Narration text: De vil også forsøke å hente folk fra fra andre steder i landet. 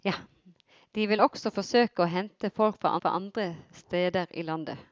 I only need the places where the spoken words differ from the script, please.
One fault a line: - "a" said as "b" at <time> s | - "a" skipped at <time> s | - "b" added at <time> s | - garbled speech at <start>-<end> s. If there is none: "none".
none